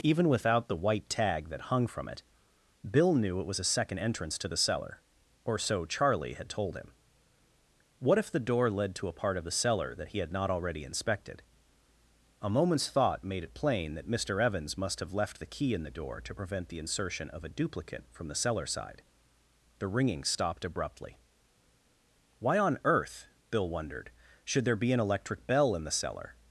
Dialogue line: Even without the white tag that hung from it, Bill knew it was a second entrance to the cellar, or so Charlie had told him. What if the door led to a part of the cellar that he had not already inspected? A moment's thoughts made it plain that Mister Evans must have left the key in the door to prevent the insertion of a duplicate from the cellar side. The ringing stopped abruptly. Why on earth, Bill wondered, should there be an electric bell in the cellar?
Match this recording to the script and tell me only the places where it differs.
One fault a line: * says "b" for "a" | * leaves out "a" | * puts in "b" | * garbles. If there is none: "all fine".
* says "thought" for "thoughts"